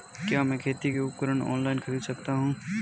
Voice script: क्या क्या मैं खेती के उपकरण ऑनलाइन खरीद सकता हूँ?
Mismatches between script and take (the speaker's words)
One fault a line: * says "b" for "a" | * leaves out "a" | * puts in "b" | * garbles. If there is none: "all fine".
* leaves out "क्या"